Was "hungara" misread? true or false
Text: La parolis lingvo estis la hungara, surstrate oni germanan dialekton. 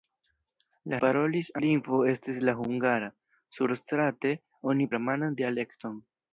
false